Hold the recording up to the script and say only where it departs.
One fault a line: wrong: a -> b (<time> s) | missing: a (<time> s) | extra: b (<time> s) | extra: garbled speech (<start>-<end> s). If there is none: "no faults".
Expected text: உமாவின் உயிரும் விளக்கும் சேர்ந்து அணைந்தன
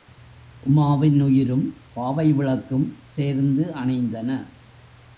extra: பாவை (1.9 s)